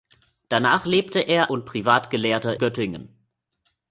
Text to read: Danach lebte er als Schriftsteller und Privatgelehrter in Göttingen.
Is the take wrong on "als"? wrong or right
wrong